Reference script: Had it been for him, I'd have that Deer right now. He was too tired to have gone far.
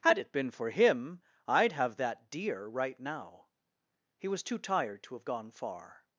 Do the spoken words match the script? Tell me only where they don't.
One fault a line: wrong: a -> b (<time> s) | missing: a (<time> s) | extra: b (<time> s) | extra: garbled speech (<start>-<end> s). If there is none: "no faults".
no faults